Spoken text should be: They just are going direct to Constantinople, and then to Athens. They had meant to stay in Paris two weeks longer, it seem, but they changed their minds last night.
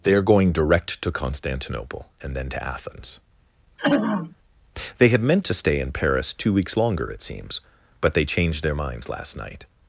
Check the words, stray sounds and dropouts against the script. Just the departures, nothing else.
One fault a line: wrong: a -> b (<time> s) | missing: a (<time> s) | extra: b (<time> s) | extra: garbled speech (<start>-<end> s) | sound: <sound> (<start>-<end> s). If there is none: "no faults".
missing: just (0.1 s)
sound: throat clearing (3.8-4.4 s)
wrong: seem -> seems (7.2 s)